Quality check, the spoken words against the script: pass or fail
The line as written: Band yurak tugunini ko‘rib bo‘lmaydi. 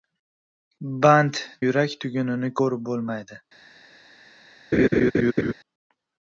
pass